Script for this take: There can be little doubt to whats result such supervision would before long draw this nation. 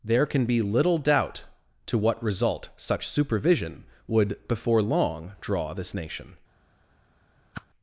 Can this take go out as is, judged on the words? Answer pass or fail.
fail